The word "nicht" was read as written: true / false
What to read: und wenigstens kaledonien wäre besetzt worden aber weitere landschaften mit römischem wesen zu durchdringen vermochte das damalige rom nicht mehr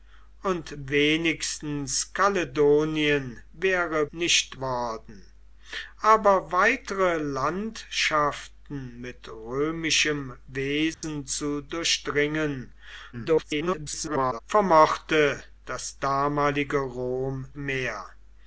false